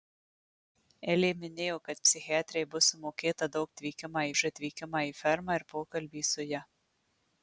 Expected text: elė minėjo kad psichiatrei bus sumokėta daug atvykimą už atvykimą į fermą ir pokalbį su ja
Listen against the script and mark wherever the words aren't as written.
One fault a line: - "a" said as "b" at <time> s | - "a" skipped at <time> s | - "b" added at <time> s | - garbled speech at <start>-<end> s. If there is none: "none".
none